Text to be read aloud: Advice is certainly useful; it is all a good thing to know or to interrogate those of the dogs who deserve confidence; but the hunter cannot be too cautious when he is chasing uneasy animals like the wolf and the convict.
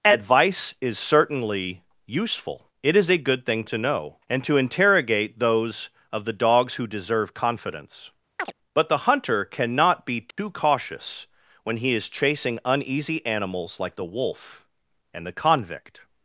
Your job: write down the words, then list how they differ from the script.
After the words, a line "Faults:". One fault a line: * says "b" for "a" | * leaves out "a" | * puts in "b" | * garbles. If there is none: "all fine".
Advice is certainly useful; it is a good thing to know and to interrogate those of the dogs who deserve confidence; but the hunter cannot be too cautious when he is chasing uneasy animals like the wolf and the convict.
Faults:
* leaves out "all"
* says "and" for "or"